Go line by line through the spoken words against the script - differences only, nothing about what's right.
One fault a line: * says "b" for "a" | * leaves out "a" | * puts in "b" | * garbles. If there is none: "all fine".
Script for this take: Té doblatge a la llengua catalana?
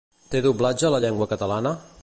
all fine